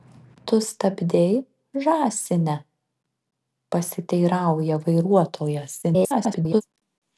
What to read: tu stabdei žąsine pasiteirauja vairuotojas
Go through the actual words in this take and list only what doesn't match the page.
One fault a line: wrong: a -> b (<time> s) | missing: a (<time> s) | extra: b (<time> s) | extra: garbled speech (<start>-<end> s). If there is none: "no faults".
extra: garbled speech (5.8-6.6 s)